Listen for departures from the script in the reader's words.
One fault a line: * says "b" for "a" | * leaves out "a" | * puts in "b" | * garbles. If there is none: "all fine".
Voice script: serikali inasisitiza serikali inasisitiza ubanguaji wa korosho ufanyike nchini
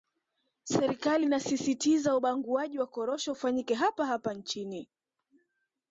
* leaves out "serikali inasisitiza"
* puts in "hapa hapa"